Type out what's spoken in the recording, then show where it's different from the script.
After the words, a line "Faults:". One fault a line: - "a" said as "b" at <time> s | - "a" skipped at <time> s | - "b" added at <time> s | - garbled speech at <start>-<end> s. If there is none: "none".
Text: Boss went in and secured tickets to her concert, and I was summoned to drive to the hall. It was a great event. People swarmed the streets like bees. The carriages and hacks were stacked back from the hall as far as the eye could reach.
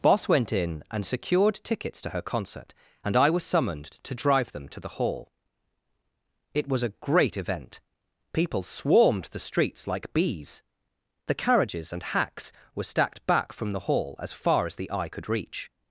Boss went in and secured tickets to her concert, and I was summoned to drive them to the hall. It was a great event. People swarmed the streets like bees. The carriages and hacks were stacked back from the hall as far as the eye could reach.
Faults:
- "them" added at 4.5 s